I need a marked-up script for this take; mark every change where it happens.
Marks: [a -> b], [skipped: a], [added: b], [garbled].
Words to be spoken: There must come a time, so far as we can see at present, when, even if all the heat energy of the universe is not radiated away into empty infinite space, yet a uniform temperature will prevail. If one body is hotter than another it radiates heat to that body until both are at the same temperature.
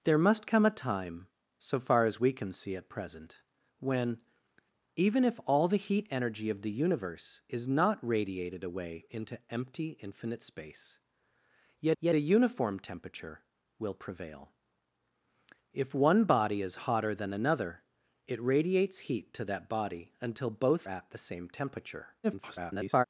There must come a time, so far as we can see at present, when, even if all the heat energy of the universe is not radiated away into empty infinite space, yet [added: yet] a uniform temperature will prevail. If one body is hotter than another it radiates heat to that body until both [skipped: are] at the same temperature. [garbled]